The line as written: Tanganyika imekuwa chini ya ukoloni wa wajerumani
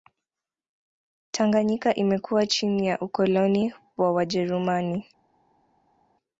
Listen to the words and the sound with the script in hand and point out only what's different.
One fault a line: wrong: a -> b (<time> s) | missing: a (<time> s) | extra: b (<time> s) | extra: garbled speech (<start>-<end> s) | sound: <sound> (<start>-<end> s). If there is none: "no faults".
no faults